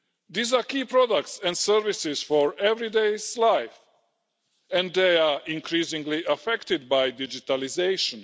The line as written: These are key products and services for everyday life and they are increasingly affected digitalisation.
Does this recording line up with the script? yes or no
no